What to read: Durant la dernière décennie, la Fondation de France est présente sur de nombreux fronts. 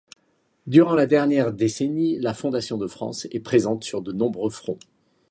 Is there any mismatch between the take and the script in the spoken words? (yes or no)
no